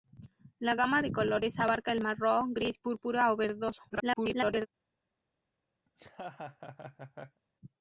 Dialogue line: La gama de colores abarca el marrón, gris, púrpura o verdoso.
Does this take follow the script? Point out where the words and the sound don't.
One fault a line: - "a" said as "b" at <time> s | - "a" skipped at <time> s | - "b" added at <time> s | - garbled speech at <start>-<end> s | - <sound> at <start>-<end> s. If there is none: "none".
- garbled speech at 3.9-4.7 s
- laugh at 5.9-7.4 s